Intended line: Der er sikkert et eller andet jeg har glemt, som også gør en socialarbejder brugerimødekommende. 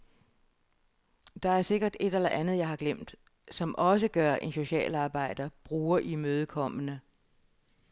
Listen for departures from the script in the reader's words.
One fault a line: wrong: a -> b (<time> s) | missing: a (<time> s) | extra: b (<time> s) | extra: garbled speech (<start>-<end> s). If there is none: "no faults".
no faults